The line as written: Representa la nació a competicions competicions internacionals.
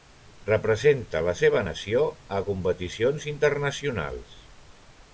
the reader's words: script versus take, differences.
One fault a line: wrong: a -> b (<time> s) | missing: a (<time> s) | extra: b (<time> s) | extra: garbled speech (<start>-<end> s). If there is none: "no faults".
extra: seva (1.4 s)
missing: competicions (3.3 s)